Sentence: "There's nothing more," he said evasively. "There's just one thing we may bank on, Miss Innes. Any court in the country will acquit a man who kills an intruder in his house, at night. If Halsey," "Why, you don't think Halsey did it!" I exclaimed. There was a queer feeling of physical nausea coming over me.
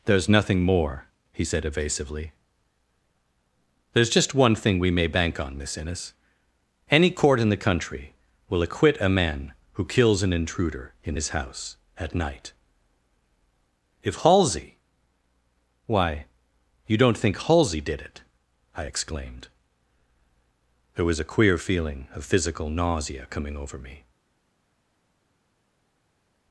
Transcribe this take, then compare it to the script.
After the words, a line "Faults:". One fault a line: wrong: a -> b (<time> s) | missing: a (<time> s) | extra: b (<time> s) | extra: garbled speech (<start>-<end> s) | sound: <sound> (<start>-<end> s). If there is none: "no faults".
"There's nothing more," he said evasively. "There's just one thing we may bank on, Miss Innes. Any court in the country will acquit a man who kills an intruder in his house, at night. If Halsey," "Why, you don't think Halsey did it!" I exclaimed. There was a queer feeling of physical nausea coming over me.
Faults:
no faults